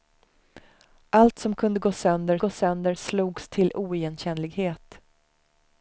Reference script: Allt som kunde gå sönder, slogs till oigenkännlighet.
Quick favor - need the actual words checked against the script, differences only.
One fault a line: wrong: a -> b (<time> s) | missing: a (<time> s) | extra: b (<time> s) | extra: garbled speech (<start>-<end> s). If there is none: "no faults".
extra: gå sönder (2.4 s)